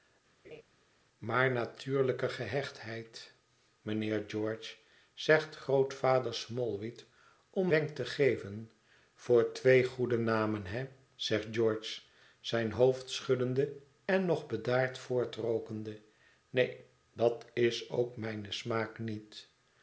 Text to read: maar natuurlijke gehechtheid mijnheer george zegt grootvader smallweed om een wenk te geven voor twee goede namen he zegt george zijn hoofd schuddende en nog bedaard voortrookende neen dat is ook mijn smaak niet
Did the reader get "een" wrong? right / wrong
wrong